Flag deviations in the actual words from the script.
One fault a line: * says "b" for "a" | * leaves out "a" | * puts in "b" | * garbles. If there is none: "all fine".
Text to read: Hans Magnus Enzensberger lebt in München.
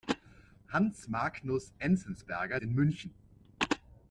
* leaves out "lebt"